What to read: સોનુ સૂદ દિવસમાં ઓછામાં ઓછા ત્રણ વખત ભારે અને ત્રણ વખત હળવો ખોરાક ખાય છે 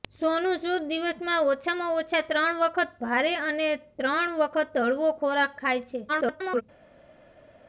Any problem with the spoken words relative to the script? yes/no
yes